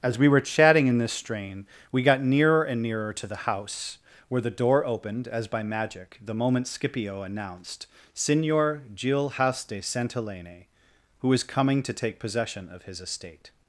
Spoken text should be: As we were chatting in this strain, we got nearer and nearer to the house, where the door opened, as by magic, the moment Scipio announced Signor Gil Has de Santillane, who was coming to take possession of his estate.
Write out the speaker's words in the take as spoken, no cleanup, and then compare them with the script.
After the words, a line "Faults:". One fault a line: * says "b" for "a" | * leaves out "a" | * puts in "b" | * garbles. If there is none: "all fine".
As we were chatting in this strain, we got nearer and nearer to the house, where the door opened, as by magic, the moment Scipio announced Signor Gil Has de Santillane, who was coming to take possession of his estate.
Faults:
all fine